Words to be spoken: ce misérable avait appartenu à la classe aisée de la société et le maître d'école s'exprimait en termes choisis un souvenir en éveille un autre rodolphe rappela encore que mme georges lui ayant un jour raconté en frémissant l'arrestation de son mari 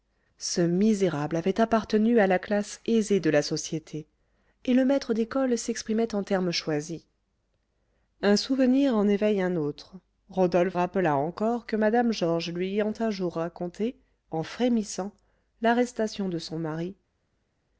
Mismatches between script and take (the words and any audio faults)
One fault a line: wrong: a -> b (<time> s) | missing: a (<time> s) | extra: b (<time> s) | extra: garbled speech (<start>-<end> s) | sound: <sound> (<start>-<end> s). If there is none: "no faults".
no faults